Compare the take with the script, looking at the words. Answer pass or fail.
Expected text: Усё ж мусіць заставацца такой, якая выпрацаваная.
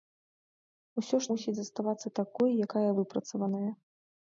pass